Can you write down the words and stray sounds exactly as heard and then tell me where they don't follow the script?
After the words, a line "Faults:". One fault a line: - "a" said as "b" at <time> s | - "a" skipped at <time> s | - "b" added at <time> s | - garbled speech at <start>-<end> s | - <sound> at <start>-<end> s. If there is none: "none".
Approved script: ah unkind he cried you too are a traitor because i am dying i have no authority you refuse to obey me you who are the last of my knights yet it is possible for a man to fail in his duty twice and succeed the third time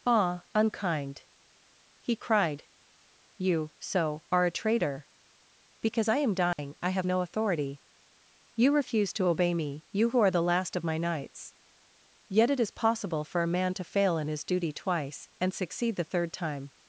ah unkind he cried you so are a traitor because i am dying i have no authority you refuse to obey me you who are the last of my knights yet it is possible for a man to fail in his duty twice and succeed the third time
Faults:
- "too" said as "so" at 3.8 s
- dropout at 6.5-6.6 s